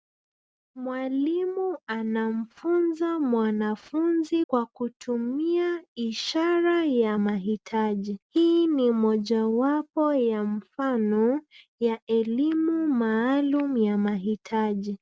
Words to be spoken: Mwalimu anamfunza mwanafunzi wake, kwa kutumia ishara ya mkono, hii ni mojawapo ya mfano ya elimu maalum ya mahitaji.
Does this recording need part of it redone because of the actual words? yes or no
yes